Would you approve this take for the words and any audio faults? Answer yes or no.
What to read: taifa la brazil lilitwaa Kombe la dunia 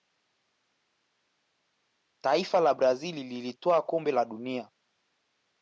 yes